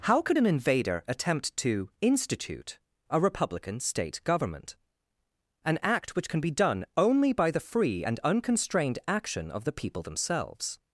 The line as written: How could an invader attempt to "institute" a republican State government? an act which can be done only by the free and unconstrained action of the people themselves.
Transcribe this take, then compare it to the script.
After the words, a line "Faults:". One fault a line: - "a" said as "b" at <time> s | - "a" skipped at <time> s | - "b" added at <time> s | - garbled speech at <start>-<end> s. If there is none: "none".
How could an invader attempt to "institute" a republican State government? an act which can be done only by the free and unconstrained action of the people themselves.
Faults:
none